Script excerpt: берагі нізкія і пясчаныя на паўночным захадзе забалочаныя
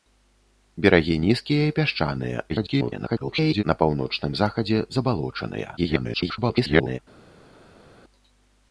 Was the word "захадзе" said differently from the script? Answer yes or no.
no